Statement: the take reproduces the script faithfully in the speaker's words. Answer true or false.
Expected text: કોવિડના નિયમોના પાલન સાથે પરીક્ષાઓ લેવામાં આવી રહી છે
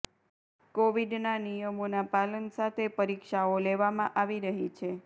true